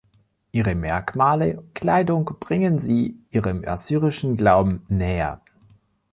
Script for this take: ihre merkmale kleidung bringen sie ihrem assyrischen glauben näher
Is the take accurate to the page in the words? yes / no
yes